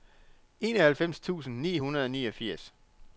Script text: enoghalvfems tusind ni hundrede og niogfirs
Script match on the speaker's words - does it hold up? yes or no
yes